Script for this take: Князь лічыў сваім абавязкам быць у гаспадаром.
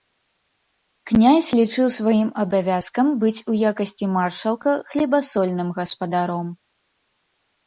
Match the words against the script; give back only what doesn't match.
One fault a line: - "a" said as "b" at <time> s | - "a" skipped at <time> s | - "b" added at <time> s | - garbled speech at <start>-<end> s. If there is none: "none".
- "якасці маршалка хлебасольным" added at 3.7 s